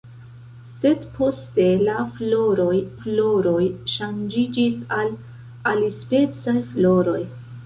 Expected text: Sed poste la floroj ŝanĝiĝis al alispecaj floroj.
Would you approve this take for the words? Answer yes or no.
no